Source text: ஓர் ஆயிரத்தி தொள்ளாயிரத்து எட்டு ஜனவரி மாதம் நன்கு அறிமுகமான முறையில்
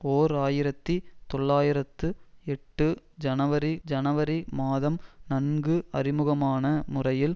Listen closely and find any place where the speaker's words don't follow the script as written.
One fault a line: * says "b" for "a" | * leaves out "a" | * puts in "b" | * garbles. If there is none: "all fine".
* puts in "ஜனவரி"